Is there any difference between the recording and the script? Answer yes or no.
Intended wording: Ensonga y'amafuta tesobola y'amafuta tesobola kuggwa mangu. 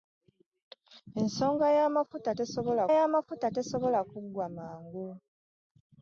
no